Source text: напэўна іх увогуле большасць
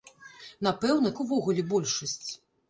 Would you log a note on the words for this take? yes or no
no